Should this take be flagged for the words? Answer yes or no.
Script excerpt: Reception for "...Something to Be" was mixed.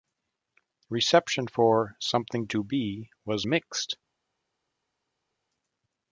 no